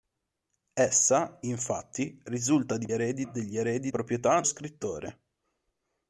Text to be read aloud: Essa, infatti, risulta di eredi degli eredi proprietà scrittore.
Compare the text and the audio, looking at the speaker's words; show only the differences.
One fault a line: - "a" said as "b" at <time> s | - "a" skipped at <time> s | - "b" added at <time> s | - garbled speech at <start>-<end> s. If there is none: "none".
none